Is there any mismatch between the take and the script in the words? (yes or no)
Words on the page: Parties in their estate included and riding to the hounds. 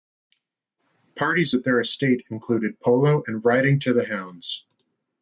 yes